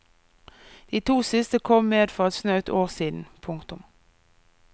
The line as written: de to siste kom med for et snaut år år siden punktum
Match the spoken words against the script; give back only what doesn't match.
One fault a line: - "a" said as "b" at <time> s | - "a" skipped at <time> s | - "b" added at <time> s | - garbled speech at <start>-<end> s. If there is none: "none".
- "år" skipped at 2.9 s